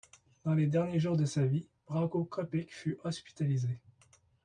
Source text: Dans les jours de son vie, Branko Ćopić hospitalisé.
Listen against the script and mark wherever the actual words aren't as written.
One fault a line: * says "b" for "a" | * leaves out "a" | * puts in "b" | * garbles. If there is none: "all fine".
* puts in "derniers"
* says "sa" for "son"
* puts in "fut"